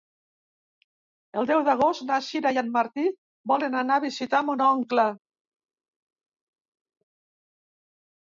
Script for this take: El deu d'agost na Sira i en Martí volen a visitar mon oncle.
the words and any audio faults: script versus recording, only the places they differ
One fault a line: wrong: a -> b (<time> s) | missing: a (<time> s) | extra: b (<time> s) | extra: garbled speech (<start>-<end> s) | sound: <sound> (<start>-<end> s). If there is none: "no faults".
extra: anar (3.8 s)